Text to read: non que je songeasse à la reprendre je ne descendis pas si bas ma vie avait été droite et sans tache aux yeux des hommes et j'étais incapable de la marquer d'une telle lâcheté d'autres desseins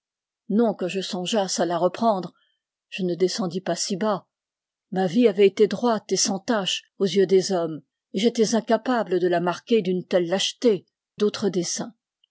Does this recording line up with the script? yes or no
yes